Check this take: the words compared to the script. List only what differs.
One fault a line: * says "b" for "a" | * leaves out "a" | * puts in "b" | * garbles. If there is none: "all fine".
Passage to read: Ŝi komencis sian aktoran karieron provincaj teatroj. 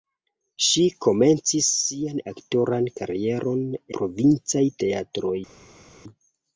all fine